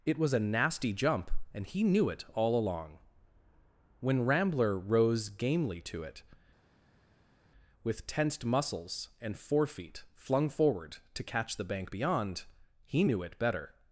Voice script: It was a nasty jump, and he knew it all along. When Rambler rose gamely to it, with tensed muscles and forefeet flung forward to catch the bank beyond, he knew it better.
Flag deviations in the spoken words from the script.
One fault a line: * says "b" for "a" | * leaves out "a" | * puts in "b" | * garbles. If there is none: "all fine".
all fine